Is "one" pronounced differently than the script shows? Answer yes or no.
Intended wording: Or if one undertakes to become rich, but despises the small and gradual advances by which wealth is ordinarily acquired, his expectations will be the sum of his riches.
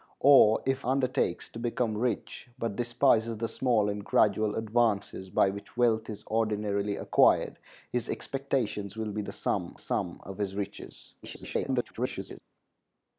yes